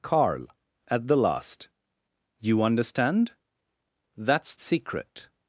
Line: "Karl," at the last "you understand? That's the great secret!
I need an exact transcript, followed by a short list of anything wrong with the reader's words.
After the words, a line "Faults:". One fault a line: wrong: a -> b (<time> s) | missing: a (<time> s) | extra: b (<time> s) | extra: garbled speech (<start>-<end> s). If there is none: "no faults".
"Karl," at the last "you understand? That's secret!
Faults:
missing: the great (4.5 s)